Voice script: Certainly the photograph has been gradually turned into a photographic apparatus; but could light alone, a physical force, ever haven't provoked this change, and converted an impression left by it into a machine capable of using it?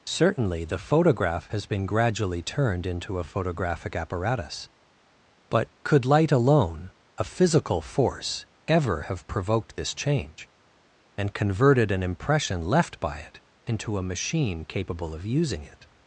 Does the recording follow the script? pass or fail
fail